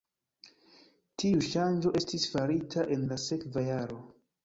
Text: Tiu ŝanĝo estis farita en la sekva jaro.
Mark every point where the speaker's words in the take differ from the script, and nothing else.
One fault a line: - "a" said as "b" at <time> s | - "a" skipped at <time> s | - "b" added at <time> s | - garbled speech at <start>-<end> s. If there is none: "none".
none